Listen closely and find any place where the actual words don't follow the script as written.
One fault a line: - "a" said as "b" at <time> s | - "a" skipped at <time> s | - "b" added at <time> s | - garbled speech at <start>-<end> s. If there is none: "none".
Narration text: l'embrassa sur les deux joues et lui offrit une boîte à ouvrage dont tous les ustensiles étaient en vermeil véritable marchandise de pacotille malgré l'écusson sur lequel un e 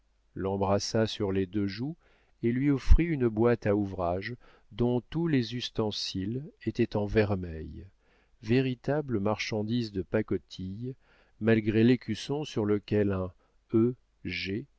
none